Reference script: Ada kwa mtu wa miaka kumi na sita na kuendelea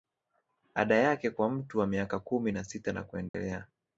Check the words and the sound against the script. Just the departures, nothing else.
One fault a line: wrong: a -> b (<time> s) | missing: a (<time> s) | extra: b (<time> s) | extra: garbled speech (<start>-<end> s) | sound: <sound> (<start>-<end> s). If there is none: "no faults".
extra: yake (0.9 s)
sound: dropout (3.3-3.3 s)